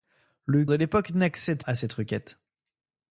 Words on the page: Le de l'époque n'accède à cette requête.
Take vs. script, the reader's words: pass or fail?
pass